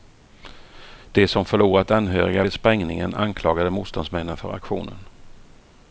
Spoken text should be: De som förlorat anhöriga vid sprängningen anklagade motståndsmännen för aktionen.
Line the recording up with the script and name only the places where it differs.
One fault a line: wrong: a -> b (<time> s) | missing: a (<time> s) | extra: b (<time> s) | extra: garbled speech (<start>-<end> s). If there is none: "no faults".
no faults